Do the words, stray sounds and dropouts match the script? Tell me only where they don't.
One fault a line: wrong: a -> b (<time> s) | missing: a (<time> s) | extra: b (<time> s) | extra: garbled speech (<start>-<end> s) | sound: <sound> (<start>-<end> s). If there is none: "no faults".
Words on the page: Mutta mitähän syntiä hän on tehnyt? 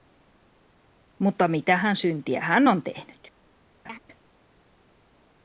sound: laugh (3.8-4.0 s)